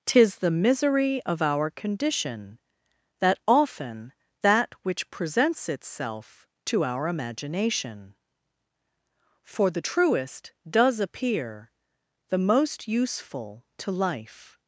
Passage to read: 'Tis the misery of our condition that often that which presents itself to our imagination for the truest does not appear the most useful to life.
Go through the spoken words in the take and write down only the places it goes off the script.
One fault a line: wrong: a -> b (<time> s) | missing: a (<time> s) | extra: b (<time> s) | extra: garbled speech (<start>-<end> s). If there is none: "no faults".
missing: not (11.0 s)